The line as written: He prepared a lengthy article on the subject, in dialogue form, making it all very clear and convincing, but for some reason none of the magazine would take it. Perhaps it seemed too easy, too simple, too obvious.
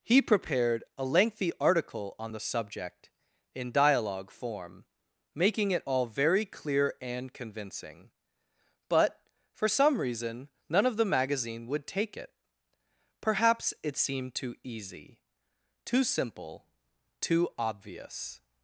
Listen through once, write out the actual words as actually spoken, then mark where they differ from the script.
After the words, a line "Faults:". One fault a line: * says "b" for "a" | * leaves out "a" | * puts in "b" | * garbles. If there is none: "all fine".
He prepared a lengthy article on the subject, in dialogue form, making it all very clear and convincing, but for some reason none of the magazine would take it. Perhaps it seemed too easy, too simple, too obvious.
Faults:
all fine